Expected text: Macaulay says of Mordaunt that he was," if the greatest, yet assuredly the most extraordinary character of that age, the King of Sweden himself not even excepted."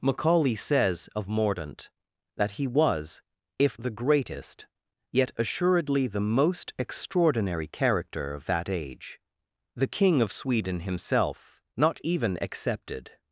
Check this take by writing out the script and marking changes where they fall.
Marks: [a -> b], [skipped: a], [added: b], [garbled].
Macaulay says of Mordaunt that he was," if the greatest, yet assuredly the most extraordinary character of that age, the King of Sweden himself not even excepted."